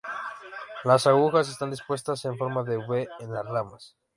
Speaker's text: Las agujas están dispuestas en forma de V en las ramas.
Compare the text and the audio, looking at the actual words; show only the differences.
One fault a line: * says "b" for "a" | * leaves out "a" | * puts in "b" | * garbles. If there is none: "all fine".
all fine